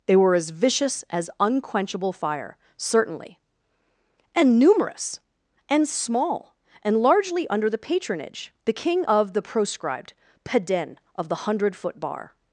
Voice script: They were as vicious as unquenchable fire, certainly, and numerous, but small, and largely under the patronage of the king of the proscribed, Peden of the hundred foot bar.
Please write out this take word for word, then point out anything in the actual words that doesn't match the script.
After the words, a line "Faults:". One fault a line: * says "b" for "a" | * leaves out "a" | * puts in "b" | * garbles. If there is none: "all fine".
They were as vicious as unquenchable fire, certainly, and numerous, and small, and largely under the patronage the king of the proscribed, Peden of the hundred foot bar.
Faults:
* says "and" for "but"
* leaves out "of"